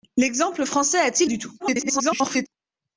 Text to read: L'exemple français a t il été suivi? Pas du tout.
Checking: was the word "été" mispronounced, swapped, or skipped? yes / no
yes